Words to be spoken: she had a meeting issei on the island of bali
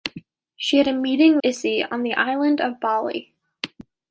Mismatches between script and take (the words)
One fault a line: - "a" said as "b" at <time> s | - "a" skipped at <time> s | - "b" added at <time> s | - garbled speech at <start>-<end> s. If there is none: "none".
none